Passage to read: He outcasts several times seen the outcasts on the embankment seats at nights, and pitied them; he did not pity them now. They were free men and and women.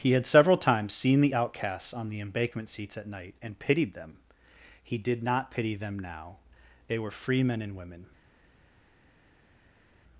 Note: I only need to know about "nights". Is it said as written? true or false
false